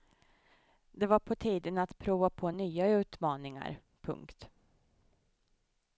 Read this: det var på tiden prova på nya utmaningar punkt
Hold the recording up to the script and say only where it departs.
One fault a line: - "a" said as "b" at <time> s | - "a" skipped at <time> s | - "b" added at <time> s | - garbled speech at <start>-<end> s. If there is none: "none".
- "att" added at 1.8 s